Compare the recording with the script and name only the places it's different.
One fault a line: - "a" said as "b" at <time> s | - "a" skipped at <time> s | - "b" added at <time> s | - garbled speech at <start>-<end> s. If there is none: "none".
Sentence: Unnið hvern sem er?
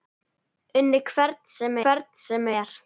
- "hvern sem" added at 1.8 s